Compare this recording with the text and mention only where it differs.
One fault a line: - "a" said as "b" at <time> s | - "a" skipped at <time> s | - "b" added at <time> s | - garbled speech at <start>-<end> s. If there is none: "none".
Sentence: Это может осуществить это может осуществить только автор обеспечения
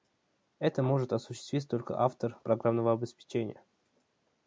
- "это может осуществить" skipped at 1.7 s
- "программного" added at 2.4 s